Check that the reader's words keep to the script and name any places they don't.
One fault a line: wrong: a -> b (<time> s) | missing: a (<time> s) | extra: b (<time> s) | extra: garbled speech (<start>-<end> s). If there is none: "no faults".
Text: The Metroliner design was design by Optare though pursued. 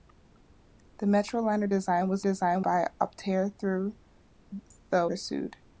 no faults